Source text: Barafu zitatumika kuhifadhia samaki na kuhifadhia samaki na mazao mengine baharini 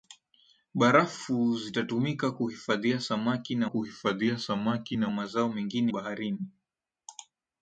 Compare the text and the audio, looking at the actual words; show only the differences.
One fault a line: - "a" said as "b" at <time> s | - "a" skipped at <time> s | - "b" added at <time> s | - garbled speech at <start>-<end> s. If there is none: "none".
none